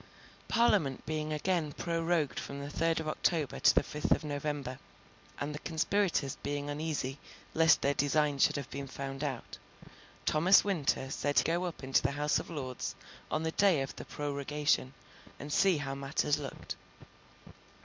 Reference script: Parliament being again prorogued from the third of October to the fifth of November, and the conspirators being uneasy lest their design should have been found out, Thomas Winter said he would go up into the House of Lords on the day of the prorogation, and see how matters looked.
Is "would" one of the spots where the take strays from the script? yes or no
yes